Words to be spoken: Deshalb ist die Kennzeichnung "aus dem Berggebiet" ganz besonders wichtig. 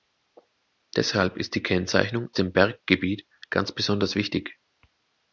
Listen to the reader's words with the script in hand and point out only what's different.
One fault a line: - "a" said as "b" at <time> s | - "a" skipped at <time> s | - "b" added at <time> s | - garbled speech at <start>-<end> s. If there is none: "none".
- "aus" skipped at 2.3 s